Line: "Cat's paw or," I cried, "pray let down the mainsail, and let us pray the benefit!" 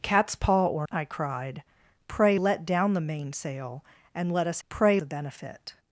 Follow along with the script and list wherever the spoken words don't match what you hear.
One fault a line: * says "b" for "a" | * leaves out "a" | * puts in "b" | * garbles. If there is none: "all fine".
all fine